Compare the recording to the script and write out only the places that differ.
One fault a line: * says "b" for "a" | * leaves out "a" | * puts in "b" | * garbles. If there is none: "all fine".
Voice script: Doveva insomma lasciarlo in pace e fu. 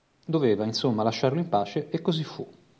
* puts in "così"